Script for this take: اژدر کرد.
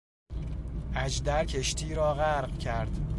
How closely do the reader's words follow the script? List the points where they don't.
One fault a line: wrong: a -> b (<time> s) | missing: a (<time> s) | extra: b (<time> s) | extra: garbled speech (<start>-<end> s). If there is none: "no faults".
extra: کشتی را غرق (1.4 s)